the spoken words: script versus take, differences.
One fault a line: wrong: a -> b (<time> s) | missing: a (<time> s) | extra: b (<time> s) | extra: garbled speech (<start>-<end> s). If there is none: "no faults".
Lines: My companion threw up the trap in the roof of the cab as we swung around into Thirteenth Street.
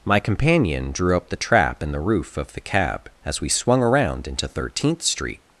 wrong: threw -> drew (0.9 s)